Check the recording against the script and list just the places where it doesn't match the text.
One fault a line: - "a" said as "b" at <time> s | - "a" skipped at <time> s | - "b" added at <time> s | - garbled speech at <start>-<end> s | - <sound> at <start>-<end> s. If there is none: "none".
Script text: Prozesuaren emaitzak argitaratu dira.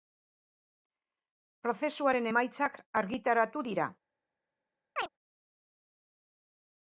- chirp at 5.0-5.1 s